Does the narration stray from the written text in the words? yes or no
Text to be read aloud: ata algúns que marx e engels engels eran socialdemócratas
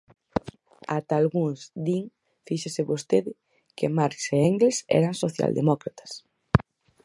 yes